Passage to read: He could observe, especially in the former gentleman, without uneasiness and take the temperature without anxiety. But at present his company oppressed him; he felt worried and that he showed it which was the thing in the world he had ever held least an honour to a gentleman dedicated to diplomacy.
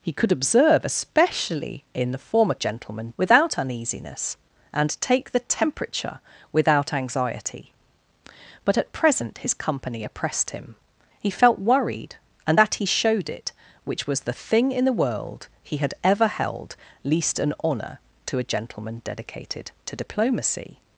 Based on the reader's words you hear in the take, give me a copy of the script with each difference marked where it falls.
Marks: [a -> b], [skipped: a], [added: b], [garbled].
He could observe, especially in the former gentleman, without uneasiness and take the temperature without anxiety. But at present his company oppressed him; he felt worried and that he showed it which was the thing in the world he had ever held least an honour to a gentleman dedicated to diplomacy.